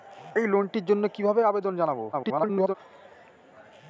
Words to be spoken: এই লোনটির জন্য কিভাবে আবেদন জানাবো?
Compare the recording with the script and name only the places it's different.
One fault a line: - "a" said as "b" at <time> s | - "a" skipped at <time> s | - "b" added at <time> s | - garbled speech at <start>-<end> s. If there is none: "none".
- garbled speech at 2.1-2.8 s